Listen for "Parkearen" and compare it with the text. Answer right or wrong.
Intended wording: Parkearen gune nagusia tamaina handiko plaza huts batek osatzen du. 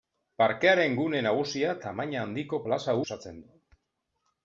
right